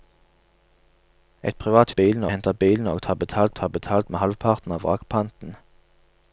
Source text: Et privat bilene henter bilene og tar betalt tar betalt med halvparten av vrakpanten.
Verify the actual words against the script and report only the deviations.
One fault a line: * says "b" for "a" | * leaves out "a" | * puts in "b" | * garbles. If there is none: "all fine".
all fine